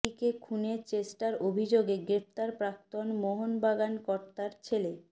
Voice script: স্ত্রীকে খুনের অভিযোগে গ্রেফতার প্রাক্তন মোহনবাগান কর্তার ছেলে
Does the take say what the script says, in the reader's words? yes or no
no